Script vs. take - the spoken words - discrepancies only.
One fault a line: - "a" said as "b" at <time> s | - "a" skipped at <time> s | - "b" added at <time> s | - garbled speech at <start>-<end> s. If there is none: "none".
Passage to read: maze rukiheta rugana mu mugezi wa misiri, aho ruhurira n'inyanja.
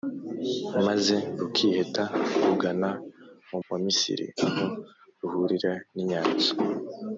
- "mugezi" skipped at 3.6 s